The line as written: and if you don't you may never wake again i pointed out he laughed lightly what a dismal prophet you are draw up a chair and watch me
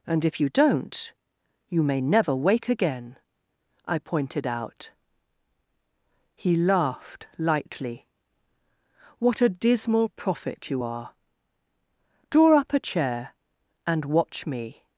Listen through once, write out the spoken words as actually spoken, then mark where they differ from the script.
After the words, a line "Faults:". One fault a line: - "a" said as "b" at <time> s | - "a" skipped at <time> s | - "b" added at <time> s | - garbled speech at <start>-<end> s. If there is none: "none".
and if you don't you may never wake again i pointed out he laughed lightly what a dismal prophet you are draw up a chair and watch me
Faults:
none